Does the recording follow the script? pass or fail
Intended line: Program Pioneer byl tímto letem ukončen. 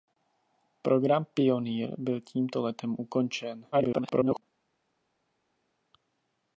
fail